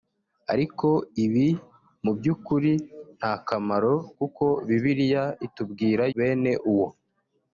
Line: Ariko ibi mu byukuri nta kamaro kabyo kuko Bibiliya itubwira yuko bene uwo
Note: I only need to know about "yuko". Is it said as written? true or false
false